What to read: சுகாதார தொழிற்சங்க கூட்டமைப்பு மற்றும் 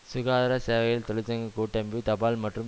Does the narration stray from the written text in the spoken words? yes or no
yes